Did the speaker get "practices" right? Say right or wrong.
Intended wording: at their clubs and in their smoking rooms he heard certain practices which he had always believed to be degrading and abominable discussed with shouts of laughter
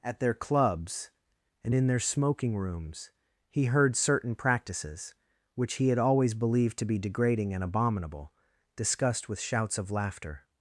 right